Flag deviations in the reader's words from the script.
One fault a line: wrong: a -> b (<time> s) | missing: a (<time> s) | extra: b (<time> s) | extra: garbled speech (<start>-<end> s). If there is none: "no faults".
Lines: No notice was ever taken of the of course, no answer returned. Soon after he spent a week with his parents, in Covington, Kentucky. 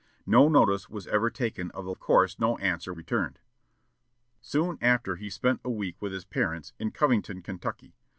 no faults